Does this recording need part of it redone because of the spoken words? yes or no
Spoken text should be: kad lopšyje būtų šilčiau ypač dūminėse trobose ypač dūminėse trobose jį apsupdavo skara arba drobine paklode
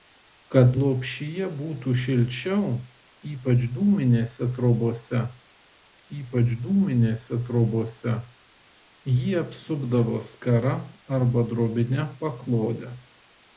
no